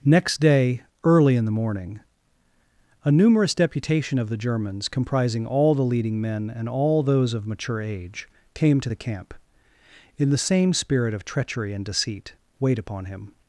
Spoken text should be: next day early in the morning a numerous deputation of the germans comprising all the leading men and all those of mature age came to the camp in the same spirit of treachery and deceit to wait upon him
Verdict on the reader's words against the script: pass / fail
fail